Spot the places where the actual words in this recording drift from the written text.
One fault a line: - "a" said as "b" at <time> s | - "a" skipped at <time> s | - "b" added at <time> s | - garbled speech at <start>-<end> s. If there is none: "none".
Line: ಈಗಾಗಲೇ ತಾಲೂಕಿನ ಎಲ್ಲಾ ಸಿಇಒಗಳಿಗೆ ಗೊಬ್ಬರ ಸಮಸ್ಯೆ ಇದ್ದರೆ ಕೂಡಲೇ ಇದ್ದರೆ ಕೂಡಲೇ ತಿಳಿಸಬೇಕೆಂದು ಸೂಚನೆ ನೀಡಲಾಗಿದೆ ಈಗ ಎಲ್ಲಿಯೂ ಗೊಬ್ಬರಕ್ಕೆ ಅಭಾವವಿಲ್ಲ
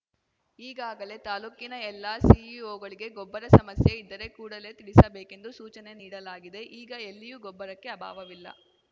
- "ಇದ್ದರೆ ಕೂಡಲೇ" skipped at 4.7 s